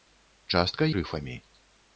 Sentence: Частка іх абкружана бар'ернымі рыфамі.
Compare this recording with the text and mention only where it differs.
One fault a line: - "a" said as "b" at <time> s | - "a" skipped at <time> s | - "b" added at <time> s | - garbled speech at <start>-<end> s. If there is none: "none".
- "іх абкружана бар'ернымі" skipped at 0.9 s